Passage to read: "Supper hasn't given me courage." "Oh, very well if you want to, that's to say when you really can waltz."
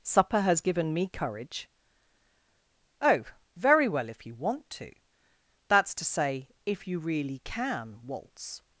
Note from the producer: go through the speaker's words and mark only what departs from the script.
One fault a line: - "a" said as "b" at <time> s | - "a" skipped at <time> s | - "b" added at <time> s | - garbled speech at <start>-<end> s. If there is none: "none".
- "hasn't" said as "has" at 0.4 s
- "when" said as "if" at 6.7 s